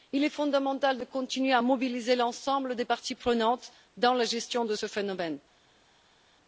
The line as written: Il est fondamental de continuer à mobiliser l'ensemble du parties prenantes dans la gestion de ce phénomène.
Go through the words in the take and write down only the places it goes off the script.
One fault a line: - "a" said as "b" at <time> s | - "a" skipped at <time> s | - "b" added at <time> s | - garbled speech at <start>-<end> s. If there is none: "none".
- "du" said as "des" at 2.7 s